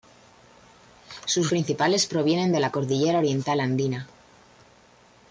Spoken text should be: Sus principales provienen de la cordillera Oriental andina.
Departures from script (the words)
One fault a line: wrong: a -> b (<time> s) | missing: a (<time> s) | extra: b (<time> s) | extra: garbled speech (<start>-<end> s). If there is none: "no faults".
no faults